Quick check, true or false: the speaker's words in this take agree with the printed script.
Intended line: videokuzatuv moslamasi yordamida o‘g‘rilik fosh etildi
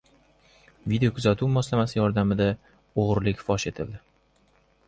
true